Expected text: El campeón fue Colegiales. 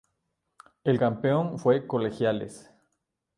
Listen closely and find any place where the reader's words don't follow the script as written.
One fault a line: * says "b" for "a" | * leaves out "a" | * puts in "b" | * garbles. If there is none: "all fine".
all fine